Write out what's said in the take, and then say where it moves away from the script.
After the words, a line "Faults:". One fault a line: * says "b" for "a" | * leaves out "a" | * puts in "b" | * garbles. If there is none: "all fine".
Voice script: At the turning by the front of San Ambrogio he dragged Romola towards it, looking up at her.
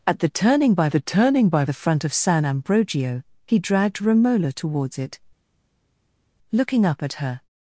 At the turning by the turning by the front of San Ambrogio he dragged Romola towards it, looking up at her.
Faults:
* puts in "turning by the"